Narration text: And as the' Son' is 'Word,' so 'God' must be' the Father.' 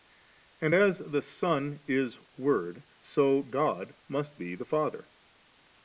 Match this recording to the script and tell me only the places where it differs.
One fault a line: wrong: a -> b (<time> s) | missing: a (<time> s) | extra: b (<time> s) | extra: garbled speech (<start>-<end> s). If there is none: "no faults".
no faults